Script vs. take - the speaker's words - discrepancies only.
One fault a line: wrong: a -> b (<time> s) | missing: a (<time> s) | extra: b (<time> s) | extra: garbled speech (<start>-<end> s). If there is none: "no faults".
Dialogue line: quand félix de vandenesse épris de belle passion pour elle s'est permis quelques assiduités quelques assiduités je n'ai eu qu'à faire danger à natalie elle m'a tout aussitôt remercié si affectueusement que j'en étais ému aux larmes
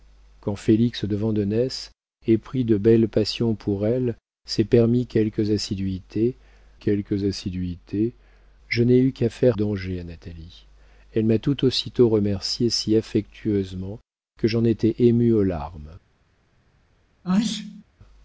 no faults